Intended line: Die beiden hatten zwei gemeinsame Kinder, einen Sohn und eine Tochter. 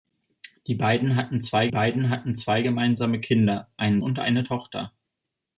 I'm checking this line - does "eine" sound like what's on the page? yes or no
yes